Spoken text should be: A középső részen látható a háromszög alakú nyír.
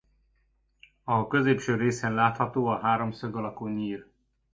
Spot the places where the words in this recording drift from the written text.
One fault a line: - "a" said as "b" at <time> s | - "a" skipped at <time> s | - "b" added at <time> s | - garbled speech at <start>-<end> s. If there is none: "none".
none